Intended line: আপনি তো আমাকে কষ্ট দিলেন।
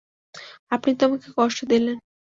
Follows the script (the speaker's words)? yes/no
yes